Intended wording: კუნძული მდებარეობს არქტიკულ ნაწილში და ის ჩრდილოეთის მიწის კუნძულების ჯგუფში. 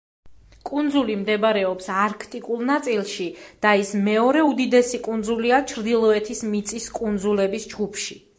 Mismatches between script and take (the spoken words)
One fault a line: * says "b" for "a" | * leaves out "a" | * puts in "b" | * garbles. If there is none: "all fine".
* puts in "მეორე უდიდესი კუნძულია"